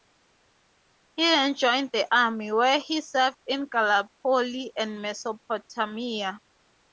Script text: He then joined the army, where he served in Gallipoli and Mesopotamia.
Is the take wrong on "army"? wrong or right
right